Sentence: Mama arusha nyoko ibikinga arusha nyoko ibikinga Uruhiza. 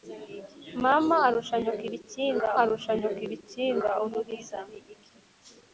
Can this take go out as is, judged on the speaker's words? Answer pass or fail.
pass